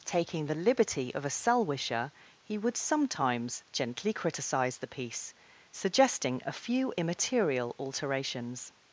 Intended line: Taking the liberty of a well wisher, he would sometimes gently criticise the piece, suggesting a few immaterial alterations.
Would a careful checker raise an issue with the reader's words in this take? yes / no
yes